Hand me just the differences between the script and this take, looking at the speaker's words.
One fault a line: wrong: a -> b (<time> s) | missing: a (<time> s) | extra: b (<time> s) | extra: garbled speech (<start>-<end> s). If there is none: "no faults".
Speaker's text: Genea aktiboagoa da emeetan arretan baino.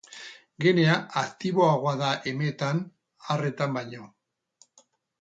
no faults